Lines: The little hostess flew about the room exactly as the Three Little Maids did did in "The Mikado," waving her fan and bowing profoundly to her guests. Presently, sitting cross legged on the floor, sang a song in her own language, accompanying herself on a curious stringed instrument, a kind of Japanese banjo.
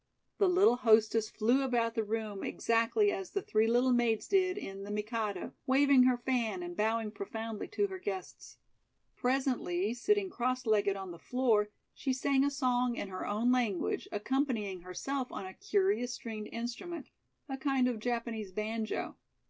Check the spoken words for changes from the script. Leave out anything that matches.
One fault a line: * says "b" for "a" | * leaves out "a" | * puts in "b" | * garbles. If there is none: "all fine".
* leaves out "did"
* puts in "she"